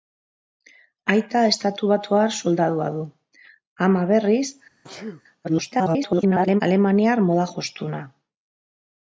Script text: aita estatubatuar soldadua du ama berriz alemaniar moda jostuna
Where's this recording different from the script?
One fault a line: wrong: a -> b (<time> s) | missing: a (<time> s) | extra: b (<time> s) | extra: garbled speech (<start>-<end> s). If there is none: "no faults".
extra: garbled speech (5.4-6.6 s)